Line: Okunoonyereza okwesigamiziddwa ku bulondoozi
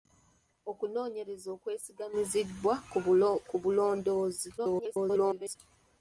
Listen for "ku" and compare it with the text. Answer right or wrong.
right